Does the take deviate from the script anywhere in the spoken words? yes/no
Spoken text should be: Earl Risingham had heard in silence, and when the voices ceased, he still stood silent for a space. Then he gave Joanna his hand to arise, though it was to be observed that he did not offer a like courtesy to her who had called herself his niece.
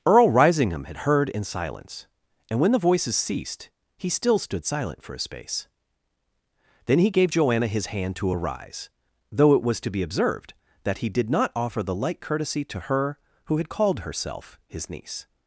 yes